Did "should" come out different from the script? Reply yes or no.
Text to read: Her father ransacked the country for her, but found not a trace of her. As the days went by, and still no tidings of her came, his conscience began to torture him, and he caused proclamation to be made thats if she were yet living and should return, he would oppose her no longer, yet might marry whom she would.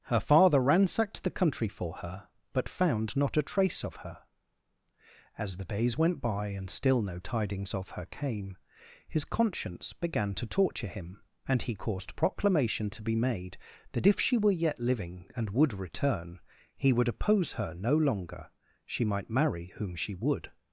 yes